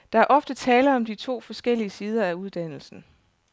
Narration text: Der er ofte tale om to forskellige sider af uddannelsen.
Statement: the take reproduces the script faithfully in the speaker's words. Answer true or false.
true